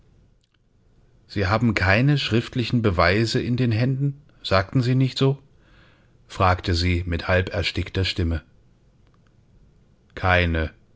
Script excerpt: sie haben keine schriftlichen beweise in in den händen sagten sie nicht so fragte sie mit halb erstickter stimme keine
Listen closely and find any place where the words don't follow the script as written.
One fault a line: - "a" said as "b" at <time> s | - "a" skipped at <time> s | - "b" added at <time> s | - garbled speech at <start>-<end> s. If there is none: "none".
- "in" skipped at 3.5 s